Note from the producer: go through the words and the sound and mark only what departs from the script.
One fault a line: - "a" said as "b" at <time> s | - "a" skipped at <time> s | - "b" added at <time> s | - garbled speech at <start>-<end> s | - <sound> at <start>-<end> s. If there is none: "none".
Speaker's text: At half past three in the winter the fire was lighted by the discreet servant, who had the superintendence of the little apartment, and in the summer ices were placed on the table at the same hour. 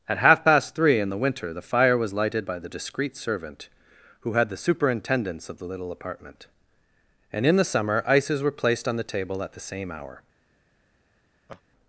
- laugh at 11.5-11.6 s